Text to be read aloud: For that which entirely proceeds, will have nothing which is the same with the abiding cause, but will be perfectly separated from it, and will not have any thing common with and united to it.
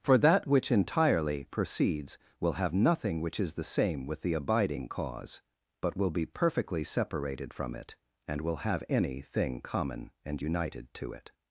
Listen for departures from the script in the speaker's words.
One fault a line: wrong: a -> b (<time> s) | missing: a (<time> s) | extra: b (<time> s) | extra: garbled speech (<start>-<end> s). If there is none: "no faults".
missing: not (8.6 s)
missing: with (10.1 s)